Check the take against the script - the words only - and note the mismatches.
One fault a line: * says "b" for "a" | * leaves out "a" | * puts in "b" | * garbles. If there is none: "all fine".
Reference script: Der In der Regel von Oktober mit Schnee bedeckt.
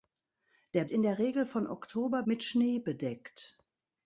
all fine